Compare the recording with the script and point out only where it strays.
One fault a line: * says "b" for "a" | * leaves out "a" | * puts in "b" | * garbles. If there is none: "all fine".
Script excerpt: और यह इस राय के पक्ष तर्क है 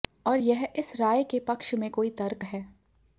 * puts in "में कोई"